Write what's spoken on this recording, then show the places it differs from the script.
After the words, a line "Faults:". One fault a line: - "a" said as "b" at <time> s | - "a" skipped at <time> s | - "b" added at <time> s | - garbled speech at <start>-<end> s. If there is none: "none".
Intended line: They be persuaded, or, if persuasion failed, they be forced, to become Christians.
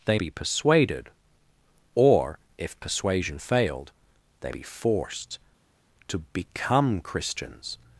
They be persuaded, or, if persuasion failed, they be forced, to become Christians.
Faults:
none